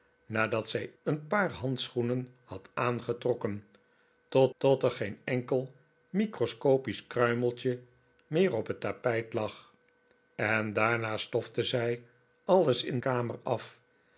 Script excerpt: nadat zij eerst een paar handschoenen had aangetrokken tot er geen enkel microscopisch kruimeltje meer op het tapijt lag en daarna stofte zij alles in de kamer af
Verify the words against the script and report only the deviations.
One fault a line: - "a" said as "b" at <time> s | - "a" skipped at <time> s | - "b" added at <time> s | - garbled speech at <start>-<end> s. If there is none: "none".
- "eerst" skipped at 0.9 s
- "tot" added at 4.6 s
- "de" skipped at 13.0 s